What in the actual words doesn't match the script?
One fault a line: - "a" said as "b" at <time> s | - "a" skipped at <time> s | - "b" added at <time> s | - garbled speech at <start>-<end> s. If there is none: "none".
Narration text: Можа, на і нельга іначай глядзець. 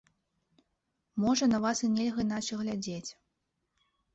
- "вас" added at 1.6 s